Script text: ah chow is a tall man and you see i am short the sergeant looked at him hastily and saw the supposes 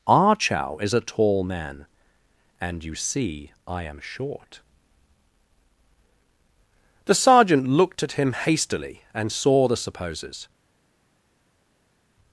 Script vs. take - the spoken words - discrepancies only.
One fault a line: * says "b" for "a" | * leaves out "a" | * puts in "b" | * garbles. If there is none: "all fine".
all fine